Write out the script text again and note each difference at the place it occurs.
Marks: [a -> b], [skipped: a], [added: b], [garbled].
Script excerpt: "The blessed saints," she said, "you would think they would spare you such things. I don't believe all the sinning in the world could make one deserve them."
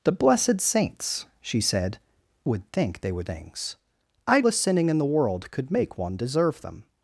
"The blessed saints," she said, [skipped: "you] would think they would [skipped: spare you such] things. I [skipped: don't believe all] the sinning in the world could make one deserve them."